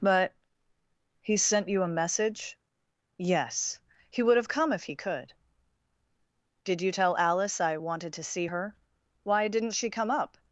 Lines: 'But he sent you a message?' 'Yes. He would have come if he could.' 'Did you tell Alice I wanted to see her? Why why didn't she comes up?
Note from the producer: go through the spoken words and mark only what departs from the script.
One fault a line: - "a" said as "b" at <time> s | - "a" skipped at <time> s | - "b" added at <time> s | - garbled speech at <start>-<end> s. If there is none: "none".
- "why" skipped at 9.5 s
- "comes" said as "come" at 9.9 s